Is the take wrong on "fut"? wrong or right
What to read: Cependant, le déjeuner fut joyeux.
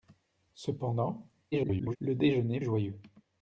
wrong